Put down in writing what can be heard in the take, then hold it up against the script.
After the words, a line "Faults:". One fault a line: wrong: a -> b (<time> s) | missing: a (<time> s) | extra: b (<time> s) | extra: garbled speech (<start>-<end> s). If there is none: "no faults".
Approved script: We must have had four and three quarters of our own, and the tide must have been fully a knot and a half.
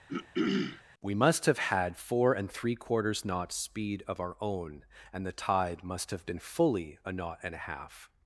We must have had four and three quarters knots' speed of our own, and the tide must have been fully a knot and a half.
Faults:
extra: knots speed (3.2 s)